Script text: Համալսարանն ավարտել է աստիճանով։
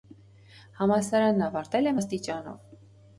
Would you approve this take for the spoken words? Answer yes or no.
yes